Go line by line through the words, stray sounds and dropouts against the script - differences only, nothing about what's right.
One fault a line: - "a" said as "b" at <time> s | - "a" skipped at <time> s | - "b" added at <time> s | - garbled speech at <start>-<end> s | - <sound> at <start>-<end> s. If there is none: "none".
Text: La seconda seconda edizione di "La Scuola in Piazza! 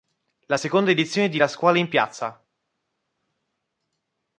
- "seconda" skipped at 0.9 s